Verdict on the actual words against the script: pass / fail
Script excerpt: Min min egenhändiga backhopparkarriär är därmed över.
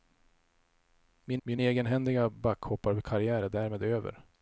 pass